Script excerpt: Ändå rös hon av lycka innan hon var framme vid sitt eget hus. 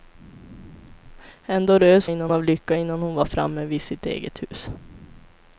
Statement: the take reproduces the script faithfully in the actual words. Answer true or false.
false